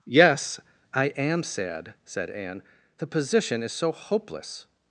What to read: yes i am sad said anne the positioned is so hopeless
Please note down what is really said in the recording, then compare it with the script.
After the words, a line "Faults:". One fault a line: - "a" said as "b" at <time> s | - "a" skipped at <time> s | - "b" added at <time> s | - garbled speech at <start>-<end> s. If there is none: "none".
yes i am sad said anne the position is so hopeless
Faults:
- "positioned" said as "position" at 3.1 s